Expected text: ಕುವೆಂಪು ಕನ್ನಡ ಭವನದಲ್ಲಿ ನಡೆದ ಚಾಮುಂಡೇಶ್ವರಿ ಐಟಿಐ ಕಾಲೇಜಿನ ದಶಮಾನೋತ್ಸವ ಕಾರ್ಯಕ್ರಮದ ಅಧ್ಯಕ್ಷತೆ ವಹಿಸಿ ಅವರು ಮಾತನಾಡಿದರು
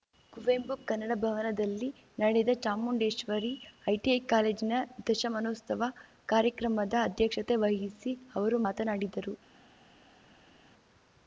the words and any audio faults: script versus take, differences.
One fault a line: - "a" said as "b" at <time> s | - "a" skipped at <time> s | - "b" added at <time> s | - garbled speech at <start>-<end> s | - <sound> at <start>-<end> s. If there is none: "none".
none